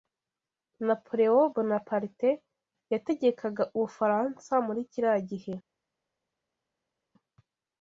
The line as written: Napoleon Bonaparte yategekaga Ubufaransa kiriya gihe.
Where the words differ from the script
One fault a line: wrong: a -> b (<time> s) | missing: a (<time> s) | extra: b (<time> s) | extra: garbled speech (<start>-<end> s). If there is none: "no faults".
extra: muri (4.7 s)